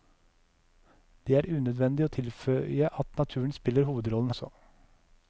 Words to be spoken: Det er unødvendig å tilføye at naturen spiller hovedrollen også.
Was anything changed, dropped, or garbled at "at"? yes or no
no